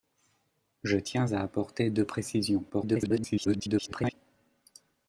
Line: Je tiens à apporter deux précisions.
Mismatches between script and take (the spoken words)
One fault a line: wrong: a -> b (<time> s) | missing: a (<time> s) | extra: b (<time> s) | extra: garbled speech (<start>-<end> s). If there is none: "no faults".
extra: garbled speech (2.7-4.1 s)